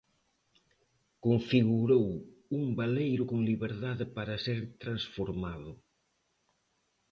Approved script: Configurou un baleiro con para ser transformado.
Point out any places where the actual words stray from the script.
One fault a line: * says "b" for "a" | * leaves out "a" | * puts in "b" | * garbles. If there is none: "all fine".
* puts in "liberdade"